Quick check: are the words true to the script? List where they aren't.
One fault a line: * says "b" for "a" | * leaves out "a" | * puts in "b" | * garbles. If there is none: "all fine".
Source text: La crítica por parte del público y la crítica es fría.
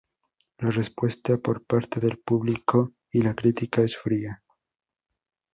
* says "respuesta" for "crítica"